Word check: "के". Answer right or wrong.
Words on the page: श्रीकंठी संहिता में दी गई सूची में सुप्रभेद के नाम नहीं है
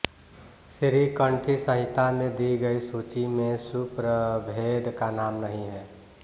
wrong